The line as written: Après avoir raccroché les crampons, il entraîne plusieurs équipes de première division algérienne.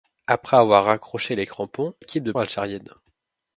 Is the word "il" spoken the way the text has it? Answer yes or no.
no